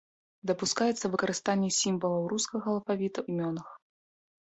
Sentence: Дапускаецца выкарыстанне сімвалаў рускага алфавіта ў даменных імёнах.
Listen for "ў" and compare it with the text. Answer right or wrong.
wrong